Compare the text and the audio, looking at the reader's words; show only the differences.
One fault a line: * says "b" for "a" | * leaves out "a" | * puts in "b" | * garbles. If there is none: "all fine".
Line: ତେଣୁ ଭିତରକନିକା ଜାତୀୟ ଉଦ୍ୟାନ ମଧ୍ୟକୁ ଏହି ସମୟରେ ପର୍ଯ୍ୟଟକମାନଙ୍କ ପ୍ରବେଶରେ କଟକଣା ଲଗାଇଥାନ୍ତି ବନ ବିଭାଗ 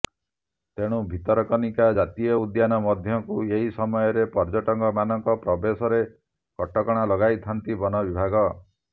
all fine